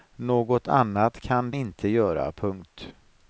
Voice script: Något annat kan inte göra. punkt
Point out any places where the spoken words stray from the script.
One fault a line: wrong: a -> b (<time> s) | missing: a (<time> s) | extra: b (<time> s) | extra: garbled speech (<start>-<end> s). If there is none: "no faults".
no faults